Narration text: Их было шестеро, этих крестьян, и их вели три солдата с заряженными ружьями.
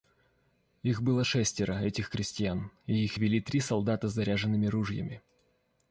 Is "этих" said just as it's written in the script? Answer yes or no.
yes